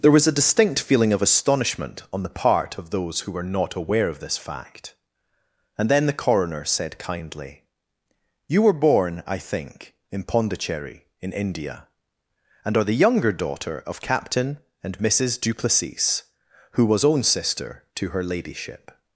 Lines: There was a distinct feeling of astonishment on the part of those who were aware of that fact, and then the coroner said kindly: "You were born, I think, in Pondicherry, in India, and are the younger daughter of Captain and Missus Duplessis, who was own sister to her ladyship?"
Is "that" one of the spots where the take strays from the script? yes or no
yes